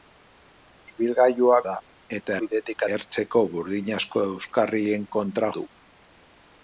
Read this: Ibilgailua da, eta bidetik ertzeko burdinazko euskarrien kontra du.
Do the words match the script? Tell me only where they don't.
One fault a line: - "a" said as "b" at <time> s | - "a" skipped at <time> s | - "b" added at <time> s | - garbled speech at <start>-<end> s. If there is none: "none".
none